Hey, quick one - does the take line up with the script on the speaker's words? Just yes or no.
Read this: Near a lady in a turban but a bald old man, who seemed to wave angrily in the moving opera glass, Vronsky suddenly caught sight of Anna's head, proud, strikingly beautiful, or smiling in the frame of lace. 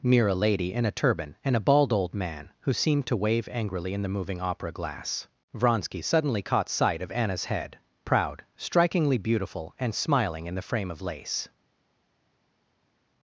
no